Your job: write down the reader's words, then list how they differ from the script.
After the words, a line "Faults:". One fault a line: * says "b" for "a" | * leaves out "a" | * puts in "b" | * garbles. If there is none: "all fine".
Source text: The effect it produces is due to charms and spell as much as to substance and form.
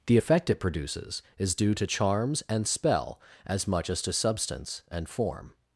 The effect it produces is due to charms and spell as much as to substance and form.
Faults:
all fine